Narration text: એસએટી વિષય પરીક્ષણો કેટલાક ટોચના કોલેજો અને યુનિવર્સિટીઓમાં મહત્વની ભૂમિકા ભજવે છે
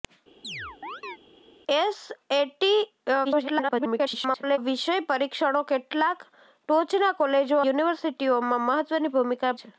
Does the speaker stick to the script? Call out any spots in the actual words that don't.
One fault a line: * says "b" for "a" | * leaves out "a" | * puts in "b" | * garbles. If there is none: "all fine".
* garbles
* leaves out "અને"
* leaves out "ભજવે"